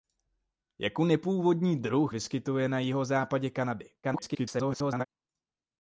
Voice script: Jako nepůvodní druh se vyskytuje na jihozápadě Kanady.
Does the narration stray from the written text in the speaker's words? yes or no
yes